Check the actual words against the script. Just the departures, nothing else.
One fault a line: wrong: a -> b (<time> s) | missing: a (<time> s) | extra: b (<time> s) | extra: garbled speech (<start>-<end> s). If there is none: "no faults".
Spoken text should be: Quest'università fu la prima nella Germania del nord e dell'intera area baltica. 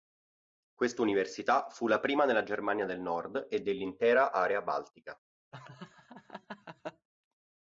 no faults